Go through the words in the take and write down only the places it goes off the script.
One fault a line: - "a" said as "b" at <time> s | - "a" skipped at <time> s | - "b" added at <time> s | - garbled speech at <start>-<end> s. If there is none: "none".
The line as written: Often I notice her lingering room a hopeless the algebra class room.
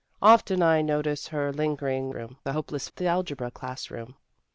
none